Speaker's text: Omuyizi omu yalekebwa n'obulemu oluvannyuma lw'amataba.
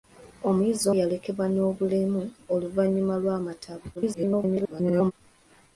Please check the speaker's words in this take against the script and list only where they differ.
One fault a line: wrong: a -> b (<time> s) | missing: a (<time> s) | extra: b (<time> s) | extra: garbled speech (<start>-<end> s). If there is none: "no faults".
missing: omu (0.8 s)
extra: garbled speech (4.0-5.1 s)